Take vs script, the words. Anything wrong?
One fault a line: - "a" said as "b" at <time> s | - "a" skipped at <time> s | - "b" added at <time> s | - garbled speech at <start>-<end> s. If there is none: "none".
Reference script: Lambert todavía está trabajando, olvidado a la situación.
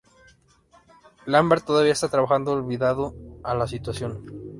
none